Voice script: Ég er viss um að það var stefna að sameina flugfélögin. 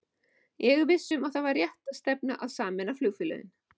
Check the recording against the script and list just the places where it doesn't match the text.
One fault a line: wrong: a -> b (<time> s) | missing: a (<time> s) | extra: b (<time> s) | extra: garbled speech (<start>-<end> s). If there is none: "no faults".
extra: rétt (1.6 s)